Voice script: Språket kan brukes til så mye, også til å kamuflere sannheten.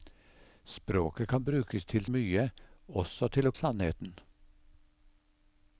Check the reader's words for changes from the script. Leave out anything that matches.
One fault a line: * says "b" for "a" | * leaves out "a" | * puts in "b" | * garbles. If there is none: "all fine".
* leaves out "så"
* leaves out "kamuflere"